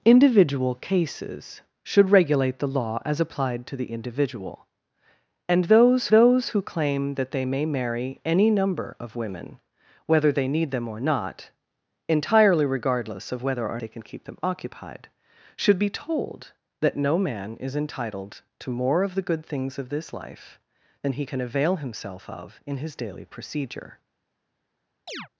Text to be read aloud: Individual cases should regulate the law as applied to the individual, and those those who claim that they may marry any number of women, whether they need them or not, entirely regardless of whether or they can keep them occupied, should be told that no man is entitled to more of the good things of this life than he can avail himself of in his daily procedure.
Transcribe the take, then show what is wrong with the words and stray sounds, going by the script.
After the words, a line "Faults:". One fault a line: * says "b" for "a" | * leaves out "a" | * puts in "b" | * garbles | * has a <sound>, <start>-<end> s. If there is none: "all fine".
Individual cases should regulate the law as applied to the individual, and those those who claim that they may marry any number of women, whether they need them or not, entirely regardless of whether or they can keep them occupied, should be told that no man is entitled to more of the good things of this life than he can avail himself of in his daily procedure.
Faults:
* has a chirp, 25.1-25.3 s